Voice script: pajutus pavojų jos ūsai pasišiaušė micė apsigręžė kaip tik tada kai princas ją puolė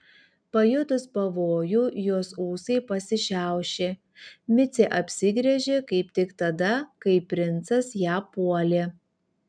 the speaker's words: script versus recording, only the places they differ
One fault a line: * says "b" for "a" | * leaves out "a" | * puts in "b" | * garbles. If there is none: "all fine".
all fine